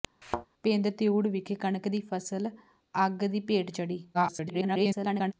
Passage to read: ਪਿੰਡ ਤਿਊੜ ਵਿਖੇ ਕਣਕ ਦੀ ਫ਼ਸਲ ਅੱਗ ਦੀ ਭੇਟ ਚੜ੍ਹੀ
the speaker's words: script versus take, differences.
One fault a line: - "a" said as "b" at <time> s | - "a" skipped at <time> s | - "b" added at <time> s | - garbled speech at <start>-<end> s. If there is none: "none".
- garbled speech at 4.1-5.3 s